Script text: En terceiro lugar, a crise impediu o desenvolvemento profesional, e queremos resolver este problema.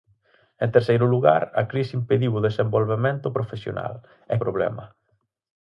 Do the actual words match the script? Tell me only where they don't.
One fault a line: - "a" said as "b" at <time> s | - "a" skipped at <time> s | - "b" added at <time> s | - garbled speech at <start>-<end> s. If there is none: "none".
- "queremos resolver este" skipped at 4.3 s